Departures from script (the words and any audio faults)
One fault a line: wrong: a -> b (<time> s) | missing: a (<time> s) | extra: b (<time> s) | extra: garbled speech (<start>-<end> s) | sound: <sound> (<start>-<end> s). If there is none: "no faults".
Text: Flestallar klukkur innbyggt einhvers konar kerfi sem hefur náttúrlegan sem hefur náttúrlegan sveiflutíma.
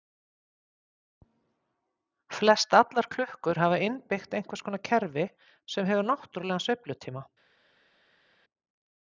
extra: hafa (3.6 s)
missing: sem hefur náttúrlegan (6.7 s)